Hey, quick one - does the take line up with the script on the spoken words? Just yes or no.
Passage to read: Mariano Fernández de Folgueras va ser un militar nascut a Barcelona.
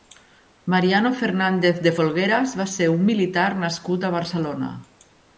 yes